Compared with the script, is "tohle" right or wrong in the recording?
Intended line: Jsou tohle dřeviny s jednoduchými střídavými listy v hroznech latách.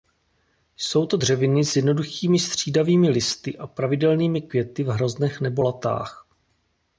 wrong